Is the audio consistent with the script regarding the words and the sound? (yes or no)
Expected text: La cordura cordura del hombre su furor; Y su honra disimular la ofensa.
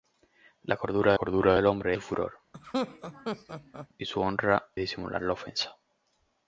no